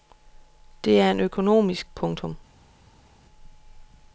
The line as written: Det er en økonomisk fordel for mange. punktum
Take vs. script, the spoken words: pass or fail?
fail